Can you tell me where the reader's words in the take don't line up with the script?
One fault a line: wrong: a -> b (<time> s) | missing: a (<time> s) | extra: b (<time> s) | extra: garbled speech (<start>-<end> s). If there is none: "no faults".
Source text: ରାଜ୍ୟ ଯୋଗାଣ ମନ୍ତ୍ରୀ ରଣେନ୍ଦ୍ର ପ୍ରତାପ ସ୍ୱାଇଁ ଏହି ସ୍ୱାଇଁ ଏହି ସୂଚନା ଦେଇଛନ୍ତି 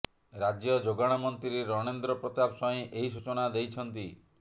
missing: ସ୍ୱାଇଁ ଏହି (3.1 s)